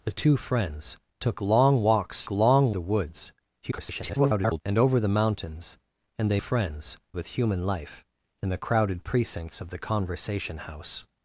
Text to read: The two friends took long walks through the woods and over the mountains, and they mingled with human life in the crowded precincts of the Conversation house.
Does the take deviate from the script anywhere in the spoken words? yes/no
yes